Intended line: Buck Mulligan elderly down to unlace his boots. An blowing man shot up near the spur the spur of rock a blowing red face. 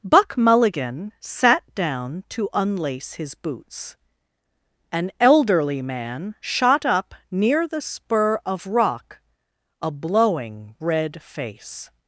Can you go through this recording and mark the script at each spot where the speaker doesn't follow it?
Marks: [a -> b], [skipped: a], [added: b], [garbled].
Buck Mulligan [elderly -> sat] down to unlace his boots. An [blowing -> elderly] man shot up near the spur [skipped: the spur] of rock a blowing red face.